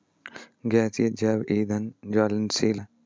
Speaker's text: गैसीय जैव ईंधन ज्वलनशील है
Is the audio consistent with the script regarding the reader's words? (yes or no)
yes